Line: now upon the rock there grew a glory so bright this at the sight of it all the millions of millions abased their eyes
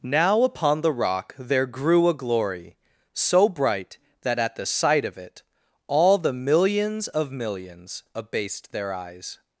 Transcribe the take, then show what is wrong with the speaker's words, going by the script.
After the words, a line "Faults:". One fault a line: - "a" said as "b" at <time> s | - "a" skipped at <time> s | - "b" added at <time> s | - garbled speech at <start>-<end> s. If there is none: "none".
now upon the rock there grew a glory so bright that at the sight of it all the millions of millions abased their eyes
Faults:
- "this" said as "that" at 4.2 s